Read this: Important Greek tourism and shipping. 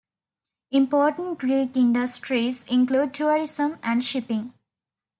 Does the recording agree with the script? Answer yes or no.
no